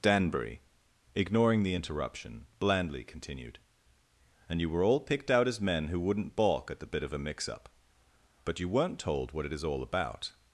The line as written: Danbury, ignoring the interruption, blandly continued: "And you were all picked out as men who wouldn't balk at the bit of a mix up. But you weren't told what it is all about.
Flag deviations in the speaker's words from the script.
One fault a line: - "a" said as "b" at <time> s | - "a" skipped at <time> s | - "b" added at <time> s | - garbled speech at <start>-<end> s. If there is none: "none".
none